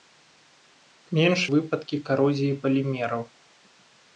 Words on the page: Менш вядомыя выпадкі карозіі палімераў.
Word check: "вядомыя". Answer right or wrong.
wrong